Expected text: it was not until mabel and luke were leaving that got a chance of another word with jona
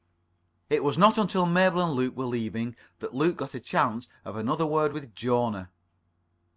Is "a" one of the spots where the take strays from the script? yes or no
no